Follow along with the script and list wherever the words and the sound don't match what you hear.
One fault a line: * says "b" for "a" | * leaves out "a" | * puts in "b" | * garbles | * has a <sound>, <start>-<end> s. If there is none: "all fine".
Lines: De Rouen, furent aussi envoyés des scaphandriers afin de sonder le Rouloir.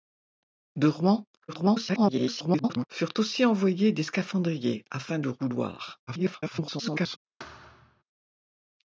* garbles
* leaves out "de sonder"
* garbles
* has a thud, 7.4-8.0 s